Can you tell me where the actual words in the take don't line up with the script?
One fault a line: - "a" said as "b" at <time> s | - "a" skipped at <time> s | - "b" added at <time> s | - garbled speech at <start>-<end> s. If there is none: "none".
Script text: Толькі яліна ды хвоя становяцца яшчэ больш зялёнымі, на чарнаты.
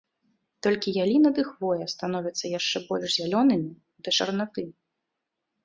- "на" said as "да" at 4.1 s